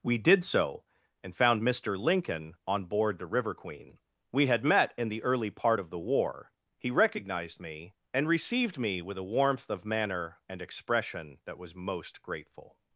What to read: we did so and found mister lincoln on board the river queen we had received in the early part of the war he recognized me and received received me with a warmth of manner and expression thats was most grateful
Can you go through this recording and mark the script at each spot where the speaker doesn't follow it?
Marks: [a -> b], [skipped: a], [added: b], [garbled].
we did so and found mister lincoln on board the river queen we had [received -> met] in the early part of the war he recognized me and received [skipped: received] me with a warmth of manner and expression [thats -> that] was most grateful